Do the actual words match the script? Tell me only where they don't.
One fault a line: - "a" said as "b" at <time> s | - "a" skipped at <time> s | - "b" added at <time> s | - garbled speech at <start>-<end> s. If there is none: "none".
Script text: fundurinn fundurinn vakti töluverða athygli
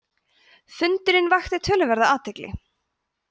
- "fundurinn" skipped at 1.3 s